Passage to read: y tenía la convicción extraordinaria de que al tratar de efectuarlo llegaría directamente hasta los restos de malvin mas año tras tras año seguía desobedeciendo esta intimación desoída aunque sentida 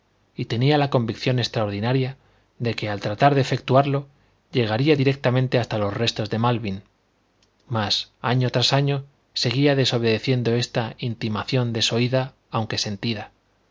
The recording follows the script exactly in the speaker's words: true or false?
false